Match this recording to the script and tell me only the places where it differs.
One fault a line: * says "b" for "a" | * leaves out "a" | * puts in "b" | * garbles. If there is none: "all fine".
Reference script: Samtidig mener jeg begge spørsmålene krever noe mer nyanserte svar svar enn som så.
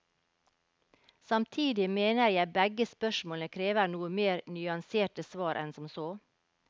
* leaves out "svar"